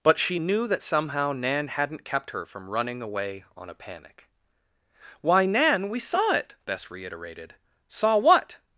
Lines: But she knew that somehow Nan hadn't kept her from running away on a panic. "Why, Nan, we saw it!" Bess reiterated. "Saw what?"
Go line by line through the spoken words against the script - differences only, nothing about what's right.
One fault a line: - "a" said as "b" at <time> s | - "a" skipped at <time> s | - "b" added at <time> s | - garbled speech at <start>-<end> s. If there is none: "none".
none